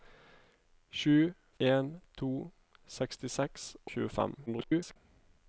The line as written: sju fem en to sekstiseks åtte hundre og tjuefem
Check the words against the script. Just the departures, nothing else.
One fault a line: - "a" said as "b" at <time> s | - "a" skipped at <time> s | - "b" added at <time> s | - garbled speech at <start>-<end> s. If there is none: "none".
- "fem" skipped at 1.3 s
- "åtte hundre" skipped at 3.7 s
- garbled speech at 4.5-5.0 s